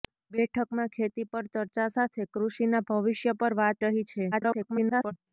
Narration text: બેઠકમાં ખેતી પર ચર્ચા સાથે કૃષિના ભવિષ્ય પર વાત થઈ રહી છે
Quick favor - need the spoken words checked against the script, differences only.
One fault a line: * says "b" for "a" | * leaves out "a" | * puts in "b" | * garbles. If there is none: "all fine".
* leaves out "થઈ"
* garbles